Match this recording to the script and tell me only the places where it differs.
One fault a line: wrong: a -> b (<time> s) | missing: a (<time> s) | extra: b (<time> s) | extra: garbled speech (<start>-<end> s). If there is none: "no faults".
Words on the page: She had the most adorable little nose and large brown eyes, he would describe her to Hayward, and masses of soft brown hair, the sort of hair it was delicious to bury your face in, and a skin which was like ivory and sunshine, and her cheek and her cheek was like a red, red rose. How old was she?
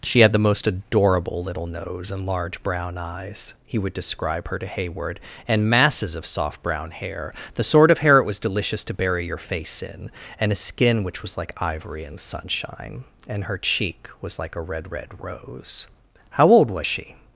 missing: and her cheek (14.1 s)